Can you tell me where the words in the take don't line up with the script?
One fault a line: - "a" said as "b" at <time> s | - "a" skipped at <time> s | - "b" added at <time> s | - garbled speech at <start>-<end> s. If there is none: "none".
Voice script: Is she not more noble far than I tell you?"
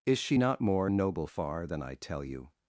none